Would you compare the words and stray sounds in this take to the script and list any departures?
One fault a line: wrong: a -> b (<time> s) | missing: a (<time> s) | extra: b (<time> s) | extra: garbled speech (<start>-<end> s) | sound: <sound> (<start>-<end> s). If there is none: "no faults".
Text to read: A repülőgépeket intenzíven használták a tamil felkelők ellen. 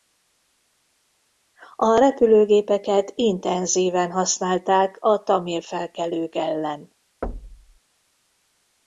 sound: thud (7.2-7.8 s)